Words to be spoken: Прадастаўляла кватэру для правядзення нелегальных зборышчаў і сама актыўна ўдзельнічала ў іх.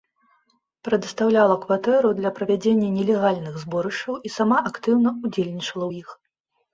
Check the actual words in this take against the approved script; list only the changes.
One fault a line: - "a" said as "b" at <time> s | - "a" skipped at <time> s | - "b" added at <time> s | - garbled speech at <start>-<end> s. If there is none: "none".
none